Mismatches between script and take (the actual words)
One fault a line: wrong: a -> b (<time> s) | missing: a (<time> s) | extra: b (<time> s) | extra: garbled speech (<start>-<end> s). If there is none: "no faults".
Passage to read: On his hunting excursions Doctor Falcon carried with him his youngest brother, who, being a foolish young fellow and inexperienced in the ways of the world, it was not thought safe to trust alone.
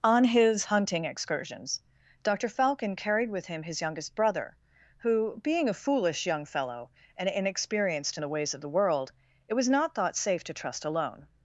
no faults